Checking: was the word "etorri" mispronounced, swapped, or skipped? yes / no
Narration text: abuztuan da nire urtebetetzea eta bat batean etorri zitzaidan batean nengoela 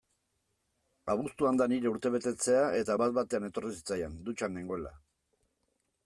no